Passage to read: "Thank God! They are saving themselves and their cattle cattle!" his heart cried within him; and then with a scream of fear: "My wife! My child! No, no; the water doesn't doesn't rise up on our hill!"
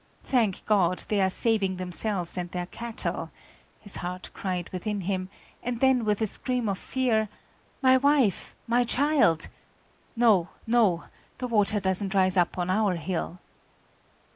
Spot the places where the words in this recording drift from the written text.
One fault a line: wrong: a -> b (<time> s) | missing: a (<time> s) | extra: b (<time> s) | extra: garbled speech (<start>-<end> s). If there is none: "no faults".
missing: cattle (3.3 s)
missing: doesn't (12.2 s)